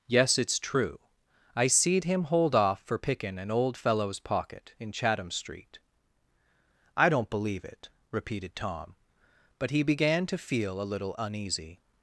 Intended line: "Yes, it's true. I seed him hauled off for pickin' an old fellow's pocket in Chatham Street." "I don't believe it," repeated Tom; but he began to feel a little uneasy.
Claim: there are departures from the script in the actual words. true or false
true